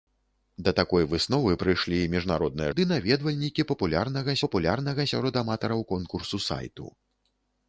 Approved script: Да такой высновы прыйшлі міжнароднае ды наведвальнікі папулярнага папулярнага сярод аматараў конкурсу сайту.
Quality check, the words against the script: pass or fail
pass